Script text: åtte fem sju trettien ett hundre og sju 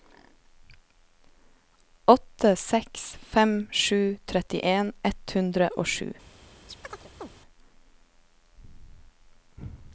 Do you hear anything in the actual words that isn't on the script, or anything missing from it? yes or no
yes